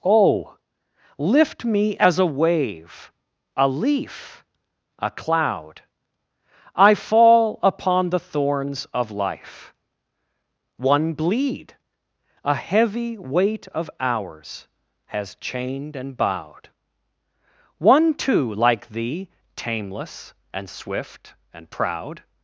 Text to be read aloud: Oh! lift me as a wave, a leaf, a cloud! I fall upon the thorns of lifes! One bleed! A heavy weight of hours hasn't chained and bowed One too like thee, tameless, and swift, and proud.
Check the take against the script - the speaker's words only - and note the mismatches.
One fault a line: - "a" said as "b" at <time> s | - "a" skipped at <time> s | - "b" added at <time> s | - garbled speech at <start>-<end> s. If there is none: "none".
- "lifes" said as "life" at 9.1 s
- "hasn't" said as "has" at 15.1 s